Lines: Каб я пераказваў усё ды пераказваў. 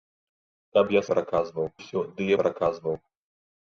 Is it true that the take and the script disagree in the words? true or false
false